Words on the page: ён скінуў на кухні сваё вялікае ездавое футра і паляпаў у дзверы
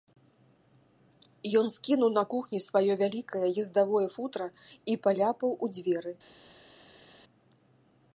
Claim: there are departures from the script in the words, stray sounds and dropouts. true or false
false